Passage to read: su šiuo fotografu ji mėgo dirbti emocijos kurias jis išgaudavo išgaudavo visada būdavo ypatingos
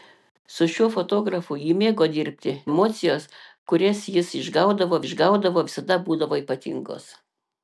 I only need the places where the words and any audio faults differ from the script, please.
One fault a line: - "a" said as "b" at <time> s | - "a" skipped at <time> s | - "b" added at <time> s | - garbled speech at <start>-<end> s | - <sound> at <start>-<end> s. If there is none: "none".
none